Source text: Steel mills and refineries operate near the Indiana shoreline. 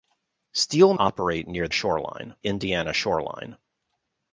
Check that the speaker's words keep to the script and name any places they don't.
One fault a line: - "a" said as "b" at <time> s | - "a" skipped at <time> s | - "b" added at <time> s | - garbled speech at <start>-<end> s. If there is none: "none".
- "mills and refineries" skipped at 0.9 s
- "the" said as "shoreline" at 1.7 s